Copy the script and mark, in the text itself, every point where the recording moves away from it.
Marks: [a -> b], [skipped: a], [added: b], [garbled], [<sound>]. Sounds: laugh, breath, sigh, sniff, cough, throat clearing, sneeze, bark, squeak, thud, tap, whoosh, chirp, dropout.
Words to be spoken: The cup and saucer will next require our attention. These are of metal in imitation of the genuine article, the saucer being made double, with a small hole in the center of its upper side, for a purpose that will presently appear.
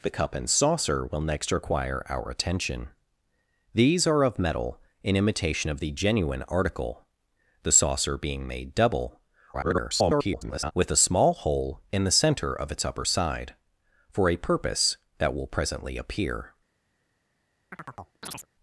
The cup and saucer will next require our attention. These are of metal in imitation of the genuine article, the saucer being made double, [garbled] with a small hole in the center of its upper side, for a purpose that will presently appear. [chirp]